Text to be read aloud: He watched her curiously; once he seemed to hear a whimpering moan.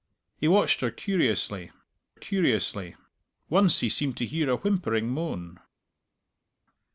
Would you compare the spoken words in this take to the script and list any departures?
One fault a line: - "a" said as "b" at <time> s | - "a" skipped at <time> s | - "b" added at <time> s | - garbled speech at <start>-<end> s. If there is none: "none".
- "curiously" added at 2.1 s